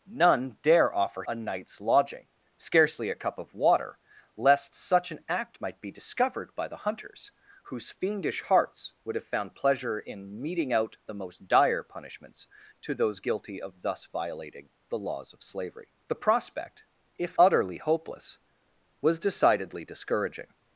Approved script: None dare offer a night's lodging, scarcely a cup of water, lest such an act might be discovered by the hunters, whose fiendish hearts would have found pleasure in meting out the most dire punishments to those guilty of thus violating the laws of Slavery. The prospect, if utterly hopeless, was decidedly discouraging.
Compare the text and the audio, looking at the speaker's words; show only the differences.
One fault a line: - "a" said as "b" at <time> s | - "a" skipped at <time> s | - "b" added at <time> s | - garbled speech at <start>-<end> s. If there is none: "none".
none